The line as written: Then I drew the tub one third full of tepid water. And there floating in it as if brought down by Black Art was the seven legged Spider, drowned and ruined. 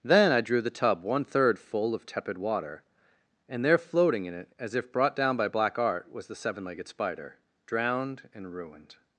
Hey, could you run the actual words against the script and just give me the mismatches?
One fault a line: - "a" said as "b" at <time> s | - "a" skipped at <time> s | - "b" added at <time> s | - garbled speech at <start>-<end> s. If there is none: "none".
none